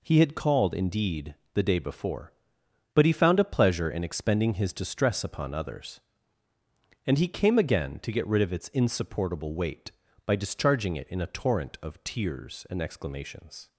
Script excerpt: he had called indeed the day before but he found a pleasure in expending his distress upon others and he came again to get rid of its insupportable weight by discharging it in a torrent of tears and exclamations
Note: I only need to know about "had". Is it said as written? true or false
true